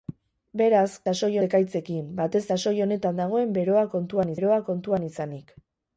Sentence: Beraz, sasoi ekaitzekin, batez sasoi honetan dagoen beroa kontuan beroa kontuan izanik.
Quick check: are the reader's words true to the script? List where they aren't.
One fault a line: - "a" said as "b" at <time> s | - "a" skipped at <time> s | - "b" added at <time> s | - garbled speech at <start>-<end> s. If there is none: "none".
none